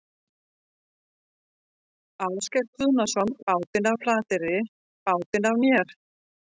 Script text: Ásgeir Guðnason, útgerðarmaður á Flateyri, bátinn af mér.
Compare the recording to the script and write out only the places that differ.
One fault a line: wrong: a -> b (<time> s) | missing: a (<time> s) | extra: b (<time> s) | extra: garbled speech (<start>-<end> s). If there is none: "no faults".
wrong: útgerðarmaður -> bátinn (3.5 s)